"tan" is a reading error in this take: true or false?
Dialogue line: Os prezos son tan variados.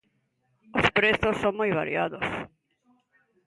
true